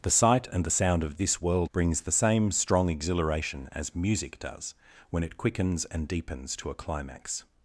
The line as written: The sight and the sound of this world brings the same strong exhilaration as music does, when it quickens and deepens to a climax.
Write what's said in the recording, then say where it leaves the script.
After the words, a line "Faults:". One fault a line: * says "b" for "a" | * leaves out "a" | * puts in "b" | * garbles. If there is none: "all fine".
The sight and the sound of this world brings the same strong exhilaration as music does, when it quickens and deepens to a climax.
Faults:
all fine